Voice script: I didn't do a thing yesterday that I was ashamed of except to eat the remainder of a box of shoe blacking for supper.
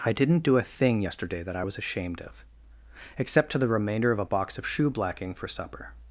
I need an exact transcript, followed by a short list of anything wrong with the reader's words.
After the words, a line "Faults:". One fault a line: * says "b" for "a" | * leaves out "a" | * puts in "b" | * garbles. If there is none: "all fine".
I didn't do a thing yesterday that I was ashamed of except to the remainder of a box of shoe blacking for supper.
Faults:
* leaves out "eat"